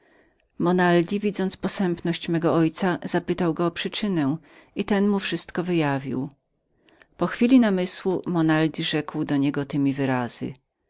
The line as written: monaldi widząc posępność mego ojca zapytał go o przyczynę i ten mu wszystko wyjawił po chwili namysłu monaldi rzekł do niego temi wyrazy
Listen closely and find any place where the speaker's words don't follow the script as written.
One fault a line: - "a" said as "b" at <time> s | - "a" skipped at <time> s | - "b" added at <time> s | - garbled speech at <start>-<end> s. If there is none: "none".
none